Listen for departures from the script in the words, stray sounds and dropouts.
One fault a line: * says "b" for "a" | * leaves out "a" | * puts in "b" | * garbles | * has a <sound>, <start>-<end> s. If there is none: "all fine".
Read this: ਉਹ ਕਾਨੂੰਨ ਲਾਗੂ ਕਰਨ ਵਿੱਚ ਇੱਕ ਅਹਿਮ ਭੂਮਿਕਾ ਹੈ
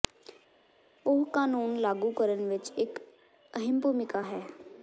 all fine